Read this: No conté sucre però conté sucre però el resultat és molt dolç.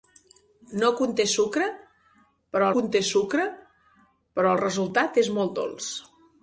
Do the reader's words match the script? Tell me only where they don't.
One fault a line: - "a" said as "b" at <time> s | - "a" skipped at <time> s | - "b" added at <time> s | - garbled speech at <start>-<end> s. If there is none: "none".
none